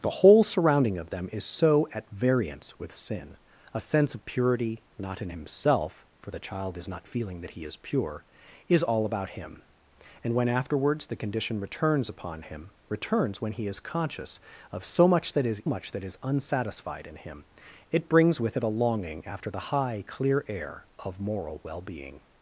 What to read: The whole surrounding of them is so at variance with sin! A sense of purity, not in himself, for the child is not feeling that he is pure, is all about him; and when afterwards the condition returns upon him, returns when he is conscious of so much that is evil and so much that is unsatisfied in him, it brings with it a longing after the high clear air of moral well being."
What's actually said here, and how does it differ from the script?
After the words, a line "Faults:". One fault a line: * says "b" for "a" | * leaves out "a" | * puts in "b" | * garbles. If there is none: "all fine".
The whole surrounding of them is so at variance with sin! A sense of purity, not in himself, for the child is not feeling that he is pure, is all about him; and when afterwards the condition returns upon him, returns when he is conscious of so much that is much that is unsatisfied in him, it brings with it a longing after the high clear air of moral well being."
Faults:
* leaves out "evil and so"